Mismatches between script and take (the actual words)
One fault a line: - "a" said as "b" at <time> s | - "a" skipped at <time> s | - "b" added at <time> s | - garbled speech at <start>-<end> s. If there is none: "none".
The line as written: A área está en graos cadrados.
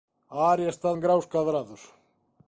none